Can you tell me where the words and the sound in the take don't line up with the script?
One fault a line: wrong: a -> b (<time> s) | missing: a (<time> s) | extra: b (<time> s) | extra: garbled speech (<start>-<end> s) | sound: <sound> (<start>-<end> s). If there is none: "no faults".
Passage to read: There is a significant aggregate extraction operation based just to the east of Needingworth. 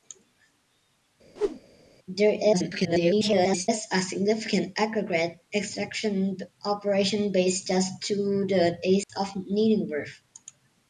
sound: whoosh (1.4-1.6 s)
extra: garbled speech (2.5-3.7 s)
sound: dropout (9.0-9.1 s)